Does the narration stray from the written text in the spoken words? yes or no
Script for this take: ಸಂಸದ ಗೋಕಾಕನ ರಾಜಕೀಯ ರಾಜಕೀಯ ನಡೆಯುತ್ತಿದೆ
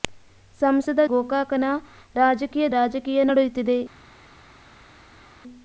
no